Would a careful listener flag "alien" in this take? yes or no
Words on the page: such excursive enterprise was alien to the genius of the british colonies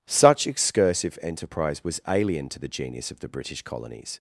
no